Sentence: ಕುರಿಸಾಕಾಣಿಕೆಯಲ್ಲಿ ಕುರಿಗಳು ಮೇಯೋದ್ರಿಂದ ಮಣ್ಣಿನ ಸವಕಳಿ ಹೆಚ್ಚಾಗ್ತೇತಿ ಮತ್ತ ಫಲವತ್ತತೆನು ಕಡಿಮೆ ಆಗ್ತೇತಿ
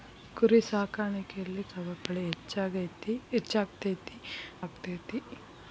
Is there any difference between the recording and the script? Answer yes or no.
yes